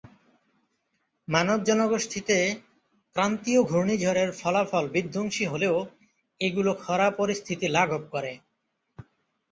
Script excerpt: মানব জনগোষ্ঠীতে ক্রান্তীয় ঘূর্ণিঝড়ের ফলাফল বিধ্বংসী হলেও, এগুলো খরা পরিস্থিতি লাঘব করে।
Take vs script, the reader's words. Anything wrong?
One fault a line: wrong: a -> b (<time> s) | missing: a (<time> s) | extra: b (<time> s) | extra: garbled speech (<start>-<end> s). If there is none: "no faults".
no faults